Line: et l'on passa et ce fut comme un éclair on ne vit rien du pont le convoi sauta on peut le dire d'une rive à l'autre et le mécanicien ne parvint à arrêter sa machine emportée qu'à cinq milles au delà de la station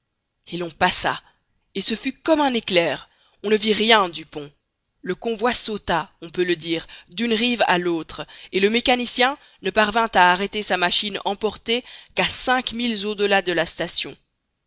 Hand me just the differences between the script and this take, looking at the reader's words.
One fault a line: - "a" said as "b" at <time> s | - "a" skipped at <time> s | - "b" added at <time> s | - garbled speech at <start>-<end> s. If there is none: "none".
none